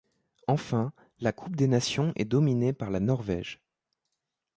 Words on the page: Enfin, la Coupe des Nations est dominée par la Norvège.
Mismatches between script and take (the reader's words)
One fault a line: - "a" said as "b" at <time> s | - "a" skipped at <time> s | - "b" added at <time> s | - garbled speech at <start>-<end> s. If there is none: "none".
none